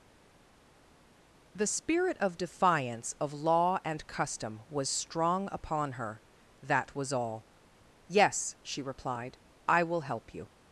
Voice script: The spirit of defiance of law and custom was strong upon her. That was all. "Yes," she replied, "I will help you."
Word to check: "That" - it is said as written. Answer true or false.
true